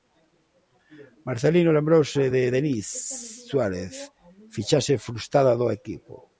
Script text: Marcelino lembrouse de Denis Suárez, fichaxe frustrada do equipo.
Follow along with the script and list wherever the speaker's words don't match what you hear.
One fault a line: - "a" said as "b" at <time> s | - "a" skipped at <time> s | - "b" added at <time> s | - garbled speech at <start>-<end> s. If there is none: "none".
none